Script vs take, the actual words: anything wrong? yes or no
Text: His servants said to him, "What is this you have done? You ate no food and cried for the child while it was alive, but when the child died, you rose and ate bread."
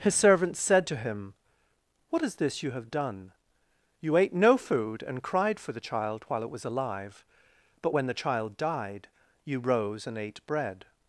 no